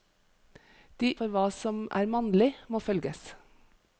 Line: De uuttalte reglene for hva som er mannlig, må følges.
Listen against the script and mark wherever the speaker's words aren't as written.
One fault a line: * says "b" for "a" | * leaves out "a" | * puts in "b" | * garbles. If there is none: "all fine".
* leaves out "uuttalte reglene"